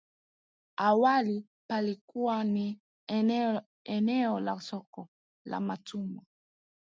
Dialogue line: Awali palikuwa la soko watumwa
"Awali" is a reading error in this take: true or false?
false